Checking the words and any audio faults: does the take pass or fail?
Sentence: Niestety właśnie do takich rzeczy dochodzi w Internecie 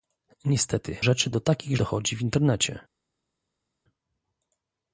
fail